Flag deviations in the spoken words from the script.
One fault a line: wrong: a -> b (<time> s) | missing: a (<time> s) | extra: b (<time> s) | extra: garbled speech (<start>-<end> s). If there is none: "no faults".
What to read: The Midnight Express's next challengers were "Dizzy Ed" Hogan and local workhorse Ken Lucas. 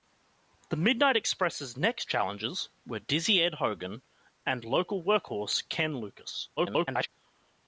extra: garbled speech (6.6-7.1 s)